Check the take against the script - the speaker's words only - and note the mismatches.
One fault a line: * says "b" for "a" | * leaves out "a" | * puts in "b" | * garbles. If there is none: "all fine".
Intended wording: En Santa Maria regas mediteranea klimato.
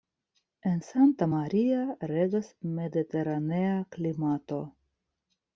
all fine